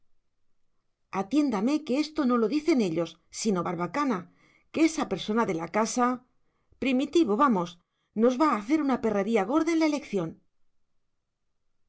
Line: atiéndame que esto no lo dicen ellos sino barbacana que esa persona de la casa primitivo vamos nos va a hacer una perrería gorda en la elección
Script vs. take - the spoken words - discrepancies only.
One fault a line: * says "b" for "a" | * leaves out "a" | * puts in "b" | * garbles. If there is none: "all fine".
all fine